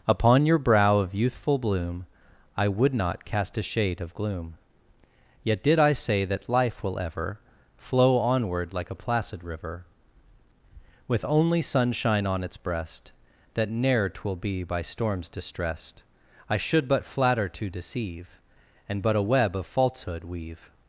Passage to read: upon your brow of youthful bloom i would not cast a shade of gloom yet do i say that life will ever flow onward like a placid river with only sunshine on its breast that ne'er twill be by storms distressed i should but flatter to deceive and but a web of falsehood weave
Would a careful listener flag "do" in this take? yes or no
yes